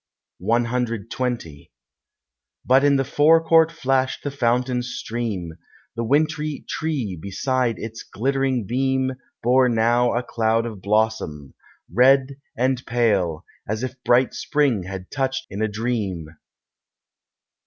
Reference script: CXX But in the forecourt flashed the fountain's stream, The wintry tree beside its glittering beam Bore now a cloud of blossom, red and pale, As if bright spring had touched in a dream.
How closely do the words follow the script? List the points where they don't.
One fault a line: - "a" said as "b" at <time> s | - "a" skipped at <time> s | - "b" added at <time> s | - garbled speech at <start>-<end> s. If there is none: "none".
none